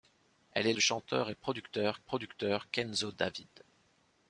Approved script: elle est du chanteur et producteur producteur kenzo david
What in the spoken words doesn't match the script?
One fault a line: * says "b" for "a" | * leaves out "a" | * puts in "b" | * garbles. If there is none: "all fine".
all fine